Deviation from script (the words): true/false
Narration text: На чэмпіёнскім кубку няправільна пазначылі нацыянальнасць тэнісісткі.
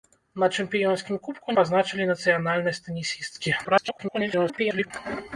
true